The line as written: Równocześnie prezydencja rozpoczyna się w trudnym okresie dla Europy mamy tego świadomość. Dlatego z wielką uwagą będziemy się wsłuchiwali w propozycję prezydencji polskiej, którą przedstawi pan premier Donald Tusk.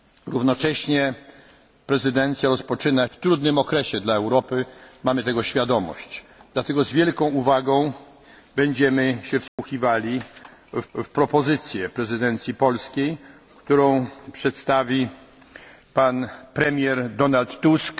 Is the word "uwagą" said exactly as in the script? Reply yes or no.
yes